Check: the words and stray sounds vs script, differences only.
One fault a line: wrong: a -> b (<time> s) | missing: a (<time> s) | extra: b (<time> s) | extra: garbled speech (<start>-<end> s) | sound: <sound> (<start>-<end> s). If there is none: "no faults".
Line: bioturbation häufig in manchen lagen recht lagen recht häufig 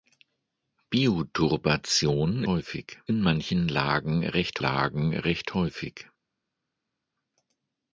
no faults